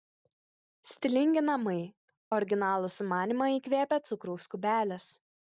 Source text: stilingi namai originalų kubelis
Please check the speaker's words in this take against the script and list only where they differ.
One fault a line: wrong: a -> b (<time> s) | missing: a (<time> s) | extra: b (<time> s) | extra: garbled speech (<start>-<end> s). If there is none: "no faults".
extra: sumanymą įkvėpė cukraus (3.0 s)